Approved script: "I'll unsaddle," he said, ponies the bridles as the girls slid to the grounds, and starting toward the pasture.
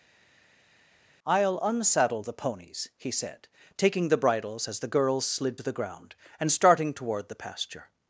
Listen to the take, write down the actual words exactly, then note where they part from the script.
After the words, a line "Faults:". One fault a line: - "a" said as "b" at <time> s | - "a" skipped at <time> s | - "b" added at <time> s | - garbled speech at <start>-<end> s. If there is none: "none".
"I'll unsaddle the ponies," he said, taking the bridles as the girls slid to the ground, and starting toward the pasture.
Faults:
- "the ponies" added at 2.2 s
- "ponies" said as "taking" at 3.8 s
- "grounds" said as "ground" at 5.7 s